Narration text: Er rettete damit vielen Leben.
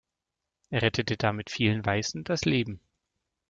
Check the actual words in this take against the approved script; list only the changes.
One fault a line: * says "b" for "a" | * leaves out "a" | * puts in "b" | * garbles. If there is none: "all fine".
* puts in "Weißen das"